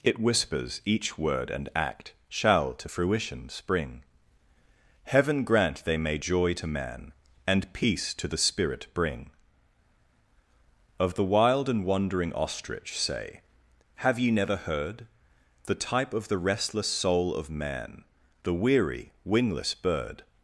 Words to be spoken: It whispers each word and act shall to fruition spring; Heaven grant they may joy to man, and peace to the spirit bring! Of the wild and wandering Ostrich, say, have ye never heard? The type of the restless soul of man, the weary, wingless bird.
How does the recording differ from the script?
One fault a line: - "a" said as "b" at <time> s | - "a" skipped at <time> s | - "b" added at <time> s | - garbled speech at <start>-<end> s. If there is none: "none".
none